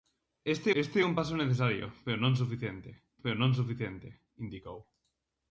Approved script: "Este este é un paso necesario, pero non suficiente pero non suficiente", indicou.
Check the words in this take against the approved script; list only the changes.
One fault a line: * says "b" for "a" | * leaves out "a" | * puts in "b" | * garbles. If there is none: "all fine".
all fine